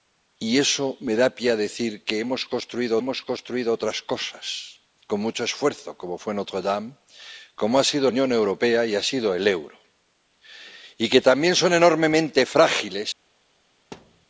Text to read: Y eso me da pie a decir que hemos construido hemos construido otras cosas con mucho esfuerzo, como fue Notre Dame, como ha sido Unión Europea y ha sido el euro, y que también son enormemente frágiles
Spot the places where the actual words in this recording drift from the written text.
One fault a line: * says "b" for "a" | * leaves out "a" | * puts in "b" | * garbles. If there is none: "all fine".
all fine